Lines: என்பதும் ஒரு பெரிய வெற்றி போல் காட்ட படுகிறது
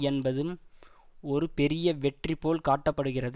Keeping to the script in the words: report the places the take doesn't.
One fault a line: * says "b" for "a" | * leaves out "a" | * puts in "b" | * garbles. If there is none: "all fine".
all fine